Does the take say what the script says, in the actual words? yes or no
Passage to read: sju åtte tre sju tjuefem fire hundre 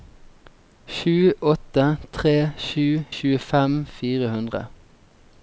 yes